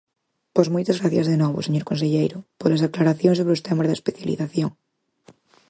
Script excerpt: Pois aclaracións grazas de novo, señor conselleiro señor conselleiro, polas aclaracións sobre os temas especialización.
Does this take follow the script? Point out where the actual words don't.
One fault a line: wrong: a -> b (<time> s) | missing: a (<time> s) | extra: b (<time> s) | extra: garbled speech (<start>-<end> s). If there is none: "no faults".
wrong: aclaracións -> moitas (0.7 s)
missing: señor conselleiro (2.4 s)
extra: da (3.9 s)